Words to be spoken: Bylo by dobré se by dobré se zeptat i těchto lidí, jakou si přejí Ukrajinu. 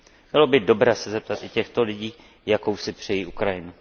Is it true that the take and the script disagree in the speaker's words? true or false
true